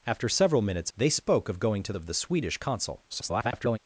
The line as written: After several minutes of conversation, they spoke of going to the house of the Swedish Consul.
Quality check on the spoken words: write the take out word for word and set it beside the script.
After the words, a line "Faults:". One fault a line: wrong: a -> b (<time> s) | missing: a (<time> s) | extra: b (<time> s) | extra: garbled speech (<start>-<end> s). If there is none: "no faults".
After several minutes they spoke of going to of the Swedish Consul. [garbled]
Faults:
missing: of conversation (0.9 s)
missing: the house (1.9 s)
extra: garbled speech (3.1-3.8 s)